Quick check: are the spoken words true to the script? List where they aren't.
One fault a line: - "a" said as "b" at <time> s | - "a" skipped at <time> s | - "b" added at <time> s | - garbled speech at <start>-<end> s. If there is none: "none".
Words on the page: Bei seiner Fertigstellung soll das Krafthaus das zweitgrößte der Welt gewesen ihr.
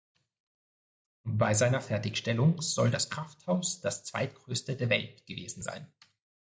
- "ihr" said as "sein" at 5.6 s